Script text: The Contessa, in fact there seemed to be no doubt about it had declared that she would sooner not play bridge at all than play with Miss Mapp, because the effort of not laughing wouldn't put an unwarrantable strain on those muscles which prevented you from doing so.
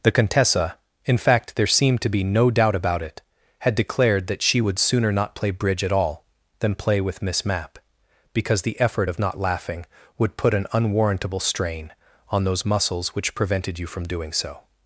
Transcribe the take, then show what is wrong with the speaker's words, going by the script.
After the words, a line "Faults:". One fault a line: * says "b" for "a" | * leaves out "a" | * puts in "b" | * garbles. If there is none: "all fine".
The Contessa, in fact there seemed to be no doubt about it had declared that she would sooner not play bridge at all than play with Miss Mapp, because the effort of not laughing would put an unwarrantable strain on those muscles which prevented you from doing so.
Faults:
* says "would" for "wouldn't"